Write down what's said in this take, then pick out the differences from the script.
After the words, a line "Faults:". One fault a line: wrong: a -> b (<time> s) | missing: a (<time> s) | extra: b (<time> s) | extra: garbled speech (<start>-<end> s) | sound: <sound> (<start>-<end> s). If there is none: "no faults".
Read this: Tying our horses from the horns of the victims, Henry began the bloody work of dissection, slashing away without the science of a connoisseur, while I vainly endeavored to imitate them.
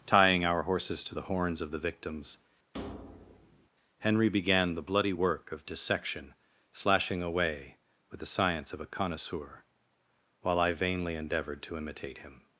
Tying our horses to the horns of the victims, Henry began the bloody work of dissection, slashing away with the science of a connoisseur, while I vainly endeavored to imitate him.
Faults:
wrong: from -> to (1.0 s)
sound: thud (2.7-3.7 s)
wrong: without -> with (8.1 s)
wrong: them -> him (12.2 s)